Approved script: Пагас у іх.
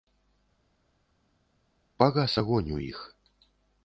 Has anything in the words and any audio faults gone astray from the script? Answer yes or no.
yes